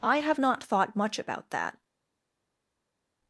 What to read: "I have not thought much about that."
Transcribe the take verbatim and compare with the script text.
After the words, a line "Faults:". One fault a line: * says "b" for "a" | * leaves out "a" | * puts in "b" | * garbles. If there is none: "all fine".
"I have not thought much about that."
Faults:
all fine